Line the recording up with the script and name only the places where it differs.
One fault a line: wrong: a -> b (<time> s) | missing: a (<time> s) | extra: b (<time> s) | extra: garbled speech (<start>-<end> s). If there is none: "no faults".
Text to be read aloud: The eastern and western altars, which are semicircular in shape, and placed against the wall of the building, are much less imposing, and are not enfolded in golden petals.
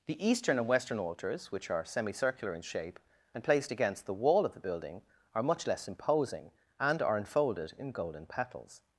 missing: not (7.2 s)